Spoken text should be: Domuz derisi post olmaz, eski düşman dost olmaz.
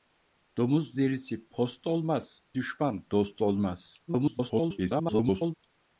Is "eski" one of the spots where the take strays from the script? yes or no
yes